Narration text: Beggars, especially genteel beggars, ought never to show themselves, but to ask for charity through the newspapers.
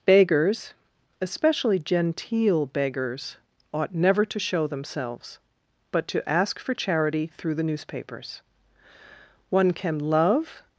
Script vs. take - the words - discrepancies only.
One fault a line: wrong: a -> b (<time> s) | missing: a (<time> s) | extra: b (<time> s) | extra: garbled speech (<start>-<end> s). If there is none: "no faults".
extra: One can love (9.5 s)